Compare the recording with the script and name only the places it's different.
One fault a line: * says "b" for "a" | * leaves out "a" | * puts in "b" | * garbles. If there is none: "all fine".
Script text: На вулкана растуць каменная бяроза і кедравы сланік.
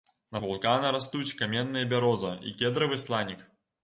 all fine